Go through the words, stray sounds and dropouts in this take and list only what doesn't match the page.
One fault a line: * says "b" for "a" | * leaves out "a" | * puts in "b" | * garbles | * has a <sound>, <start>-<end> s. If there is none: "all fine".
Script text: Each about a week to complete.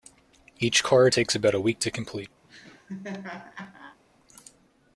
* puts in "car takes"
* has a laugh, 2.4-4.0 s